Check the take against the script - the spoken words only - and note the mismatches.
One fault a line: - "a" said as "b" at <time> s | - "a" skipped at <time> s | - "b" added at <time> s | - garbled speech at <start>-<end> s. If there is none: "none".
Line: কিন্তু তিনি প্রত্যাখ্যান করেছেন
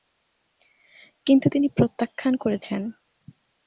none